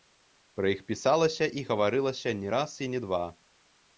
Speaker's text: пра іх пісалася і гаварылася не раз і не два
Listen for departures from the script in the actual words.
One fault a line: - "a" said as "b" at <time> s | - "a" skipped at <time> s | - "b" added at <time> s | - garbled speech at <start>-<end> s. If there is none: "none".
none